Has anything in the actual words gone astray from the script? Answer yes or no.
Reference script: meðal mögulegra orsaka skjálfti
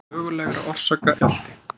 no